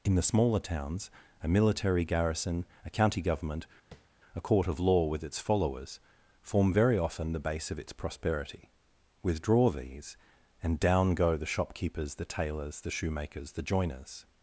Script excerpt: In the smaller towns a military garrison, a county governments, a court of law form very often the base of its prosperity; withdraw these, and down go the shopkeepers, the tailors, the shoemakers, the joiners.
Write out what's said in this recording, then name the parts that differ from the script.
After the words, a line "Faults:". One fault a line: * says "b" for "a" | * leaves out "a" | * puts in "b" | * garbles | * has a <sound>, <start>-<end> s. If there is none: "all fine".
In the smaller towns a military garrison, a county government, a court of law with its followers, form very often the base of its prosperity; withdraw these, and down go the shopkeepers, the tailors, the shoemakers, the joiners.
Faults:
* says "government" for "governments"
* has a tap, 3.9-4.1 s
* puts in "with its followers"